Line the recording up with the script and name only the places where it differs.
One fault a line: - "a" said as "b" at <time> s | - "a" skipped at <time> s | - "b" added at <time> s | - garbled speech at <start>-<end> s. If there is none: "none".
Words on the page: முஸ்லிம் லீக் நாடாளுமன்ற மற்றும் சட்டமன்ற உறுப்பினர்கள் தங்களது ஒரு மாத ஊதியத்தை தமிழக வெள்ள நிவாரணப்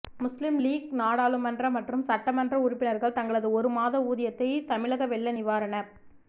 none